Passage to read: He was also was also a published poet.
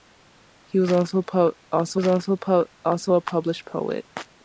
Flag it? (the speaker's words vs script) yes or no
no